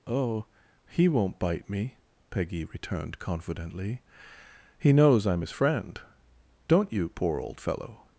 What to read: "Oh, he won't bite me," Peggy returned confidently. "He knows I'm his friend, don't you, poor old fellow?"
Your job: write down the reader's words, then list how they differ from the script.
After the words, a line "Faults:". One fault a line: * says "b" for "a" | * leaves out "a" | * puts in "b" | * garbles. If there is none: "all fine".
"Oh, he won't bite me," Peggy returned confidently. "He knows I'm his friend, don't you, poor old fellow?"
Faults:
all fine